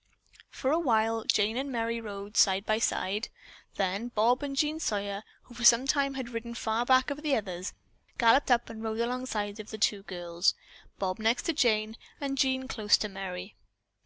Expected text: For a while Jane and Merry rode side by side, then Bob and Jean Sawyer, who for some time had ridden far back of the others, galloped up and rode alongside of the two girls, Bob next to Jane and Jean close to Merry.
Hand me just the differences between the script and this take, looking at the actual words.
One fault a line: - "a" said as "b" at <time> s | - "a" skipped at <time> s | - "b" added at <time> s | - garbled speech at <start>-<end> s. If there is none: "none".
none